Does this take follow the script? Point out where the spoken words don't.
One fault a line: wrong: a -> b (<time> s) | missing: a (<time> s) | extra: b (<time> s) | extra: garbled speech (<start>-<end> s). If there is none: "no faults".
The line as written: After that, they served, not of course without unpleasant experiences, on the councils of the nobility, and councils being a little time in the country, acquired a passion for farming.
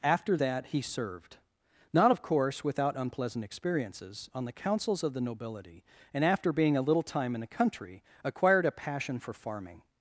wrong: they -> he (0.7 s)
wrong: councils -> after (6.2 s)